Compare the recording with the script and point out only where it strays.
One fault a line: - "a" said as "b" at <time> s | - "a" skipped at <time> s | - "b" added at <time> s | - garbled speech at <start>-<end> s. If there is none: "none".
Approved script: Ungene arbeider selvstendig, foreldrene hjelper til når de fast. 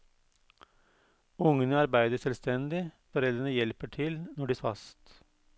none